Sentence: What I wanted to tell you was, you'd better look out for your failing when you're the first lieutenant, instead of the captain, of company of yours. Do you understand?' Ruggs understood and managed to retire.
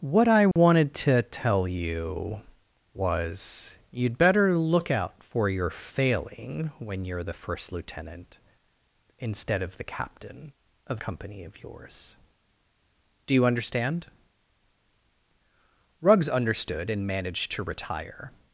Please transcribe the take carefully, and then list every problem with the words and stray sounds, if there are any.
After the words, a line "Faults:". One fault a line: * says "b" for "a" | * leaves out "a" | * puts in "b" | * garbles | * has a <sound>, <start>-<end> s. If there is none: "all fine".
What I wanted to tell you was, you'd better look out for your failing when you're the first lieutenant, instead of the captain, of company of yours. Do you understand?' Ruggs understood and managed to retire.
Faults:
* has a dropout, 0.5-0.6 s